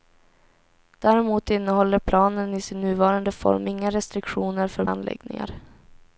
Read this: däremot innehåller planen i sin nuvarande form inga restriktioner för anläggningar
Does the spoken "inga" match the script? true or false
true